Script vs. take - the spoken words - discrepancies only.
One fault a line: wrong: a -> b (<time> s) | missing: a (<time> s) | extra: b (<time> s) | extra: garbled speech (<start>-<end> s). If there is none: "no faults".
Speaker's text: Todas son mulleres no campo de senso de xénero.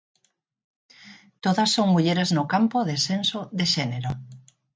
no faults